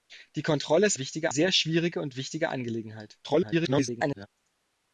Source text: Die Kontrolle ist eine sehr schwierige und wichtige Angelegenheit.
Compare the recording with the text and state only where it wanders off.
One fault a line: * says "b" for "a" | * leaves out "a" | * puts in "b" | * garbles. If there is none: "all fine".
* says "wichtige" for "eine"
* garbles